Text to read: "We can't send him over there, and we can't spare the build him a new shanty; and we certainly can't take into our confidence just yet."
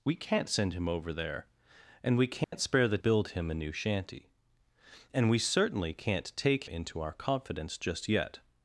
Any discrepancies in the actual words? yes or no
no